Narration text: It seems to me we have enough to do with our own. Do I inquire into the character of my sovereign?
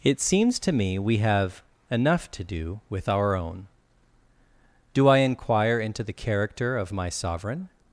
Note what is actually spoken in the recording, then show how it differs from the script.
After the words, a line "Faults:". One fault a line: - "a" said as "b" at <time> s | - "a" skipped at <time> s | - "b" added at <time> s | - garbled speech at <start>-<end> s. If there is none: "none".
It seems to me we have enough to do with our own. Do I inquire into the character of my sovereign?
Faults:
none